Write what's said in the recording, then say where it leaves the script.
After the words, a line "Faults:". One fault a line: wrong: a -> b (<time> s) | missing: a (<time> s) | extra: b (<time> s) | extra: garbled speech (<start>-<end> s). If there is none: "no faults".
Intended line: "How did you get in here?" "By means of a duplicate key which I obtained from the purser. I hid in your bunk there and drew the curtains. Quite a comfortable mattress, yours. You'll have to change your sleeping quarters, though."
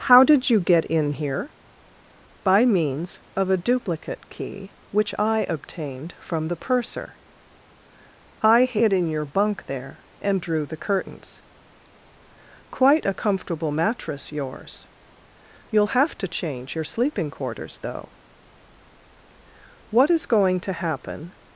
"How did you get in here?" "By means of a duplicate key which I obtained from the purser. I hid in your bunk there and drew the curtains. Quite a comfortable mattress, yours. You'll have to change your sleeping quarters, though." "What is going to happen
Faults:
extra: What is going to happen (19.9 s)